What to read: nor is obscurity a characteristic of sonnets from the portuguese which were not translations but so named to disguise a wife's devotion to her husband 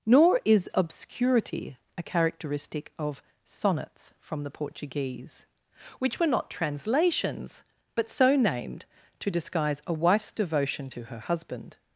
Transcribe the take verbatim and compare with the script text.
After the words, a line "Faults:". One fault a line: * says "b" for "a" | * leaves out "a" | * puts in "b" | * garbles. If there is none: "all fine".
nor is obscurity a characteristic of sonnets from the portuguese which were not translations but so named to disguise a wife's devotion to her husband
Faults:
all fine